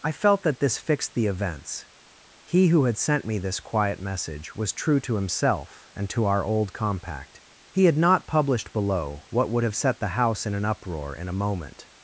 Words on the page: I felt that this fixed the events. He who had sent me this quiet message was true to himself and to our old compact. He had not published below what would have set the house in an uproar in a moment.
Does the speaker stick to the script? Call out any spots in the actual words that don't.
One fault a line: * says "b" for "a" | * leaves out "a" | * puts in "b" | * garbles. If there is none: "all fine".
all fine